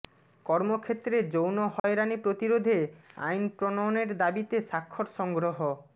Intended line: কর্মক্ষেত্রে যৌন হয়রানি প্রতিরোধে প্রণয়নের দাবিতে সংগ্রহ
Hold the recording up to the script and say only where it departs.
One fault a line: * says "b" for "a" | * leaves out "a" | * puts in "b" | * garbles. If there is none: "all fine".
* puts in "আইন"
* puts in "স্বাক্ষর"